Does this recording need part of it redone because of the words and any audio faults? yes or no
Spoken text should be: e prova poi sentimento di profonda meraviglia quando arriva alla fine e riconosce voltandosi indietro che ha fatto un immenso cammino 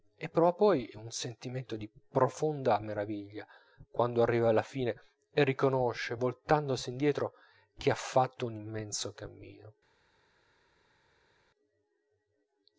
yes